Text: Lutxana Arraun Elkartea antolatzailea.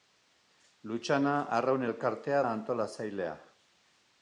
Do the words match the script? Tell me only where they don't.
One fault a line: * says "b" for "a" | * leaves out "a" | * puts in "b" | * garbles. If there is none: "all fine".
all fine